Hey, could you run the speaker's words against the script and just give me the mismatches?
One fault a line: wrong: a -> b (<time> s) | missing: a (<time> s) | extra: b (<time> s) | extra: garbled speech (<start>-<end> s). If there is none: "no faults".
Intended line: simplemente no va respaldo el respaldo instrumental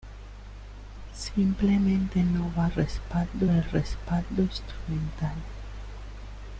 no faults